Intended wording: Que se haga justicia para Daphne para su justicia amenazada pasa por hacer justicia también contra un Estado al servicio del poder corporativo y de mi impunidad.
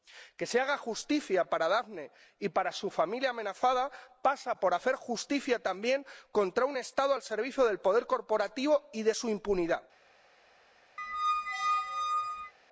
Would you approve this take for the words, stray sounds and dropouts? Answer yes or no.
no